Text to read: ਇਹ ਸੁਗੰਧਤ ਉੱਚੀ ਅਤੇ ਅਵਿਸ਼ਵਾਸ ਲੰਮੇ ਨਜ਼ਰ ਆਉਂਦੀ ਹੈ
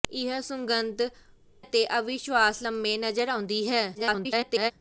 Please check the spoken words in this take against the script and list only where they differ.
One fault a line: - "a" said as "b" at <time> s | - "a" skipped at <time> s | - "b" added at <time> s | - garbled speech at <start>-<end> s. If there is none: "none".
- "ਉੱਚੀ" skipped at 1.1 s
- garbled speech at 3.9-4.7 s